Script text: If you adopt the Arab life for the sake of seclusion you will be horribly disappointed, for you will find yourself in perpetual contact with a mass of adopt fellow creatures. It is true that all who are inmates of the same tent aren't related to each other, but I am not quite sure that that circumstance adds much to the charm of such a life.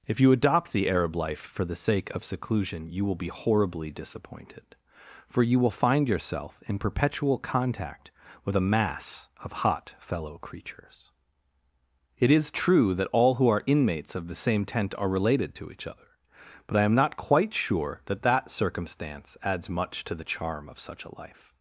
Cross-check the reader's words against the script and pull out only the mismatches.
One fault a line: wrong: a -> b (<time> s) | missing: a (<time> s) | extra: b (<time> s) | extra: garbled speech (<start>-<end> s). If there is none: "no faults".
wrong: adopt -> hot (9.6 s)
wrong: aren't -> are (15.0 s)